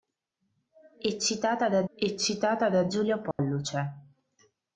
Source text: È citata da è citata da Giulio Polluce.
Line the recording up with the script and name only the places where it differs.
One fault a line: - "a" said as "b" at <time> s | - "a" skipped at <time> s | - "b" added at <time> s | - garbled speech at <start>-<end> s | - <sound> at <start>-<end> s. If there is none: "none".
- dropout at 3.3-3.4 s